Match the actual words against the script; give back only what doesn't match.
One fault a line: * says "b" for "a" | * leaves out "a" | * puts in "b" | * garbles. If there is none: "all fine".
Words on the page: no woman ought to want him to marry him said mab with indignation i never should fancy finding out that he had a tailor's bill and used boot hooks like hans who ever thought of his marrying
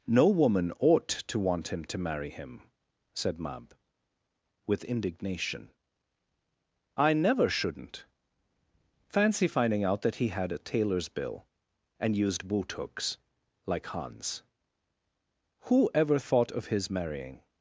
* says "shouldn't" for "should"